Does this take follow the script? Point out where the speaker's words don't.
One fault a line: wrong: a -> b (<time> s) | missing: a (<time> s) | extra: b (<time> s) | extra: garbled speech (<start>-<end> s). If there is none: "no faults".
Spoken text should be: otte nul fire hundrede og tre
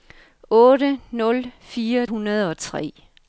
no faults